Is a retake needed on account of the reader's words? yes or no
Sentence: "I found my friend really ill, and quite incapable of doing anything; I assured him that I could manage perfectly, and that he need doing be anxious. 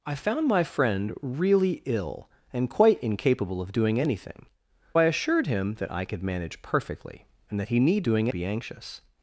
no